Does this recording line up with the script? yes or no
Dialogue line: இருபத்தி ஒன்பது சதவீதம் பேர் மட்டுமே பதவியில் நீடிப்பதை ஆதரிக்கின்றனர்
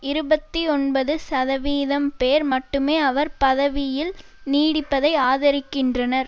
no